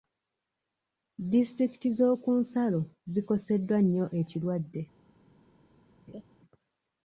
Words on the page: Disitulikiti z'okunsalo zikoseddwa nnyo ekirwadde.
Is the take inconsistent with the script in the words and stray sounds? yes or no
yes